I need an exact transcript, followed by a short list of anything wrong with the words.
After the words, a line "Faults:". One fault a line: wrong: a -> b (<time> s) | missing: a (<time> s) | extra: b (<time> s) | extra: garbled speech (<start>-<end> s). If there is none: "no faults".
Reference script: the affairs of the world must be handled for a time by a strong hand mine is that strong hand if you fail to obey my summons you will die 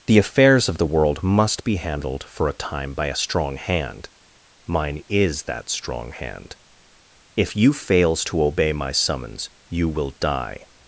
the affairs of the world must be handled for a time by a strong hand mine is that strong hand if you fails to obey my summons you will die
Faults:
wrong: fail -> fails (7.7 s)